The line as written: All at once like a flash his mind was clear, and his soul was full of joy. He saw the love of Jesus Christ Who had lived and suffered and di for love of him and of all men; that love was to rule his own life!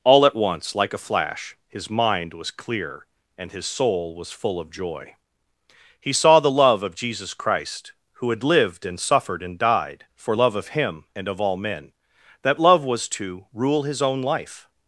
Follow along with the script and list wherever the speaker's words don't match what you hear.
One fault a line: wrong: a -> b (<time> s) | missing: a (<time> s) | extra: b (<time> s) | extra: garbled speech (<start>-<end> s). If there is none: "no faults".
wrong: di -> died (9.6 s)